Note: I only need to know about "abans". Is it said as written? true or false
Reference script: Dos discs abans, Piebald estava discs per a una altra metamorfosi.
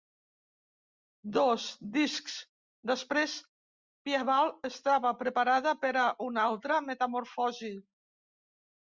false